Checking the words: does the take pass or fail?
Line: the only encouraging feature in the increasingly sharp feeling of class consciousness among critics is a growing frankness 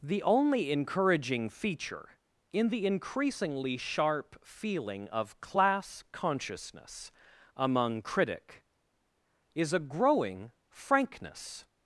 fail